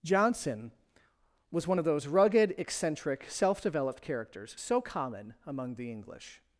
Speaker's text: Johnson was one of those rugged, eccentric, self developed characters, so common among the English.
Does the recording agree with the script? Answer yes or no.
yes